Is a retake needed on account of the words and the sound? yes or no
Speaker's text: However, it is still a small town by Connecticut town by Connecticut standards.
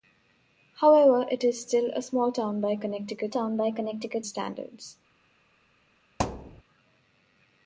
yes